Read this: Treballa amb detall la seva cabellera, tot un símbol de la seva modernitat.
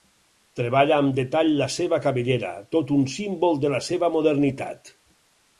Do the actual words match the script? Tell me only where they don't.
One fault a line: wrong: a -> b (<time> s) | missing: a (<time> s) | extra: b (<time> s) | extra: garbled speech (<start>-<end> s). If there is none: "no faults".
no faults